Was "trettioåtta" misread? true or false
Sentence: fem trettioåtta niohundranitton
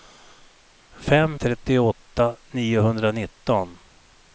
false